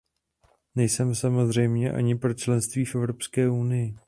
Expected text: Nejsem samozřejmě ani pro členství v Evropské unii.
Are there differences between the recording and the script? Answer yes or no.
no